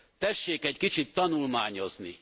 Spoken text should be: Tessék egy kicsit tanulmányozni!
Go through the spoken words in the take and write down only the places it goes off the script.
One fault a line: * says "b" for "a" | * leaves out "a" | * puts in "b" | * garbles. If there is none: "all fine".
all fine